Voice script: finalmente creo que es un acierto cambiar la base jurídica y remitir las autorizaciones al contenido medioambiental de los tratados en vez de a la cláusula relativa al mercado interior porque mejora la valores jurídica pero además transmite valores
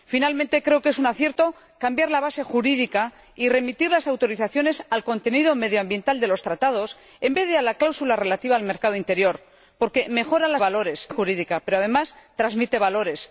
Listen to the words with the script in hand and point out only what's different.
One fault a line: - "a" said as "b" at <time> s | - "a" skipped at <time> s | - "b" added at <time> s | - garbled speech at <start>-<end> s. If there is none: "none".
none